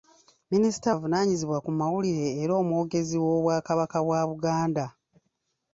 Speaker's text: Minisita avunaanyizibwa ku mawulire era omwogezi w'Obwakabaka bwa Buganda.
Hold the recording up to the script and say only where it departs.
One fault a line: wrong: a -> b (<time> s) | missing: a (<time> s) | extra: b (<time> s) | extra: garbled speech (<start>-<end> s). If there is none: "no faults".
no faults